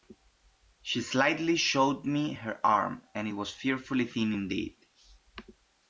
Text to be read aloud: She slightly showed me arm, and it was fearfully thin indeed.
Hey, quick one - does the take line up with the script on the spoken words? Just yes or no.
no